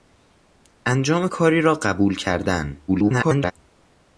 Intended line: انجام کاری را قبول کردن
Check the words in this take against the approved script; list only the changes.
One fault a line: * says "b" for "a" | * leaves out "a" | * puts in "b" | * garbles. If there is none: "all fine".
* garbles